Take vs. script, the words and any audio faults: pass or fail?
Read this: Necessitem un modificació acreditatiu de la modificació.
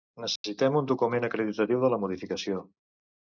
fail